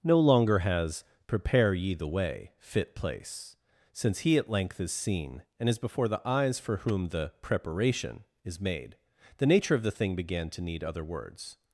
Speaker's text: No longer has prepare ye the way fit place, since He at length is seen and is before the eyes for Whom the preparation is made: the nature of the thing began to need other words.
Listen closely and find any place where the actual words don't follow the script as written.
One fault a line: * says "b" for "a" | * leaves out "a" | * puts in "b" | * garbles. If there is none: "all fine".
all fine